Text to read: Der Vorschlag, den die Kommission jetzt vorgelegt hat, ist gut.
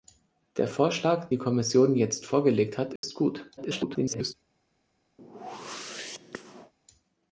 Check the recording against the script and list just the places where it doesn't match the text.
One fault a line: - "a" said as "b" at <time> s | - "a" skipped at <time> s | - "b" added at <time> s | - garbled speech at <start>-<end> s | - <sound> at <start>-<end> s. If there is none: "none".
- "den" skipped at 1.3 s
- dropout at 3.0-3.0 s
- garbled speech at 3.6-4.3 s
- whoosh at 5.2-6.7 s